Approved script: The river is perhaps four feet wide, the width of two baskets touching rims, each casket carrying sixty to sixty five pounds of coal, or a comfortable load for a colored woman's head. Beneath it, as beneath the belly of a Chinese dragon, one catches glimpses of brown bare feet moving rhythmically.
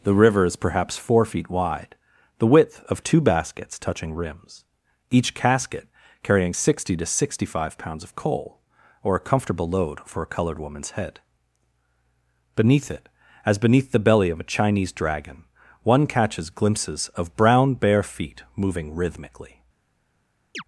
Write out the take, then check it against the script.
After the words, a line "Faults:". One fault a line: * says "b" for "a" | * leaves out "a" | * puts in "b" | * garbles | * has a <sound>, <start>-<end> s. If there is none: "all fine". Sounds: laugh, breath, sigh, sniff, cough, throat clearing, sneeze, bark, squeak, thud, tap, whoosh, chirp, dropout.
The river is perhaps four feet wide, the width of two baskets touching rims, each casket carrying sixty to sixty five pounds of coal, or a comfortable load for a colored woman's head. Beneath it, as beneath the belly of a Chinese dragon, one catches glimpses of brown bare feet moving rhythmically.
Faults:
* has a chirp, 20.5-20.6 s